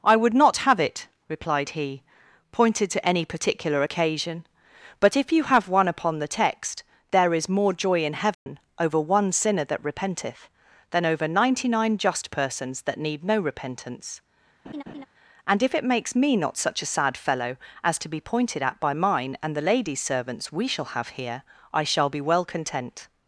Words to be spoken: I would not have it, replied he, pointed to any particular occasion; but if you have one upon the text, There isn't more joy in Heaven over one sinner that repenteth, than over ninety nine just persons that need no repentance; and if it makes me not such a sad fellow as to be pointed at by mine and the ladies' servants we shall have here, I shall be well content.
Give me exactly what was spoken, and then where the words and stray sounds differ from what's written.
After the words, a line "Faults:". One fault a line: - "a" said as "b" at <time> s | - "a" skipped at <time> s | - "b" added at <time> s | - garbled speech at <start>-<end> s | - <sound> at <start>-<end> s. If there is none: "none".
I would not have it, replied he, pointed to any particular occasion; but if you have one upon the text, There is more joy in Heaven over one sinner that repenteth, than over ninety nine just persons that need no repentance; and if it makes me not such a sad fellow as to be pointed at by mine and the ladies' servants we shall have here, I shall be well content.
Faults:
- "isn't" said as "is" at 7.3 s
- dropout at 8.3-8.5 s
- laugh at 14.6-15.1 s